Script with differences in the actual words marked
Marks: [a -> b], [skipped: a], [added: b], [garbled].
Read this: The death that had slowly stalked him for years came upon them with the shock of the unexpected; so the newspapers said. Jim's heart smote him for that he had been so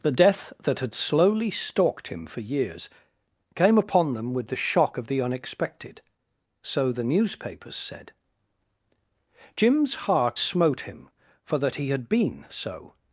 The death that had slowly stalked him for years came upon them with the shock of the unexpected; so the newspapers said. Jim's heart smote him for that he had been so